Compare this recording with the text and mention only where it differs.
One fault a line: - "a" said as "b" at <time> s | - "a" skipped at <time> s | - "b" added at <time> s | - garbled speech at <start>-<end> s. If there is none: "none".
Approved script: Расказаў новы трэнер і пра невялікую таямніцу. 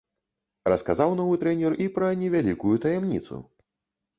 none